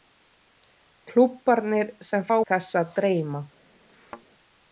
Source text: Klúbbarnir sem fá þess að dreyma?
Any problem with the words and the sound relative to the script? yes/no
yes